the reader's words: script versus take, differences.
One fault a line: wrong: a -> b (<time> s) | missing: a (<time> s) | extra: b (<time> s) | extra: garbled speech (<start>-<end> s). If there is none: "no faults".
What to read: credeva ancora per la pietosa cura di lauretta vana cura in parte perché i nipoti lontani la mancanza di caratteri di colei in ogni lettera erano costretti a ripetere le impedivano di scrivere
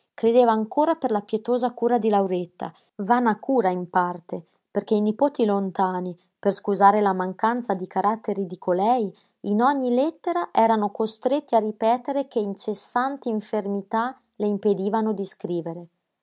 extra: per scusare (6.4 s)
extra: che incessanti infermità (12.3 s)